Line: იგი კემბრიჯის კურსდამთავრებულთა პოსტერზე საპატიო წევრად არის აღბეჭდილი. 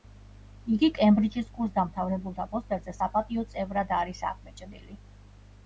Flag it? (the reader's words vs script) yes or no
no